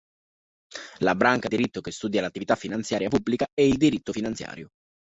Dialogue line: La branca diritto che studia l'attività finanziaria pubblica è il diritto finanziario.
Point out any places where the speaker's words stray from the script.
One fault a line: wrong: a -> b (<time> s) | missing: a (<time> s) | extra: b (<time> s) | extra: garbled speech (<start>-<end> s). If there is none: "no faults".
no faults